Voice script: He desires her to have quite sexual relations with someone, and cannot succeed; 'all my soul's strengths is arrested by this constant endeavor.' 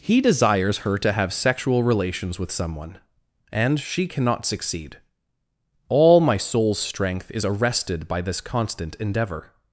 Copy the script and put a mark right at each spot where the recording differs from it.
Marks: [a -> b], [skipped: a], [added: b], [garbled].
He desires her to have [skipped: quite] sexual relations with someone, and [added: she] cannot succeed; 'all my soul's [strengths -> strength] is arrested by this constant endeavor.'